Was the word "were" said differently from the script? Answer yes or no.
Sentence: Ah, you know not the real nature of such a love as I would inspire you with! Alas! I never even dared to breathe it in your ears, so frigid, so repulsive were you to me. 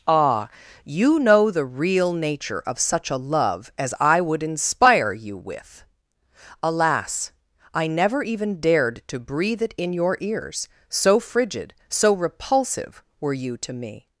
no